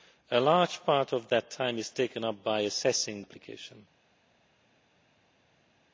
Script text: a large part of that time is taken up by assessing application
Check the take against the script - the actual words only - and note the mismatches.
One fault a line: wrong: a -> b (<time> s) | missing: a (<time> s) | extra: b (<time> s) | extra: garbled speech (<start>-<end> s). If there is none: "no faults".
no faults